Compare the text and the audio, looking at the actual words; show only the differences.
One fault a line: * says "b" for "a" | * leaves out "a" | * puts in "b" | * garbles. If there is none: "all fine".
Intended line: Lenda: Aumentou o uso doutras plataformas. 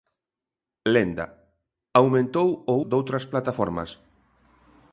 * leaves out "uso"